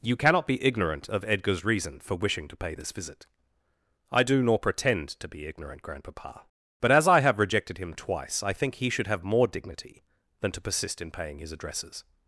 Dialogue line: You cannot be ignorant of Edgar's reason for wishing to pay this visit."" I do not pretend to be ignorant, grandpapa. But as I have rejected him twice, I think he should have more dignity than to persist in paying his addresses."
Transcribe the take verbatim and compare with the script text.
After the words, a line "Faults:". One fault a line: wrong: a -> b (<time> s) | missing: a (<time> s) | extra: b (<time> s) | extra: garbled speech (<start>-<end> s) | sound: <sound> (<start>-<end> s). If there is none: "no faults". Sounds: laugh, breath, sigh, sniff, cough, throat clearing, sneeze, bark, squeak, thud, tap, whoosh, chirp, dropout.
You cannot be ignorant of Edgar's reason for wishing to pay this visit."" I do nor pretend to be ignorant, grandpapa. But as I have rejected him twice, I think he should have more dignity than to persist in paying his addresses."
Faults:
wrong: not -> nor (4.4 s)